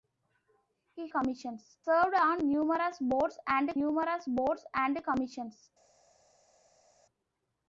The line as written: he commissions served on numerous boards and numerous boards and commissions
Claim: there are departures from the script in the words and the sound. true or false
false